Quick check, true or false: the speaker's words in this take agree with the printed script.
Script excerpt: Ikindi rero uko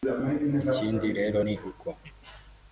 false